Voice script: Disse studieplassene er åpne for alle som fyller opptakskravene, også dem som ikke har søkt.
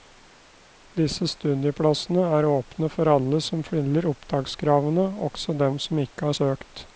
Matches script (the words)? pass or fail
pass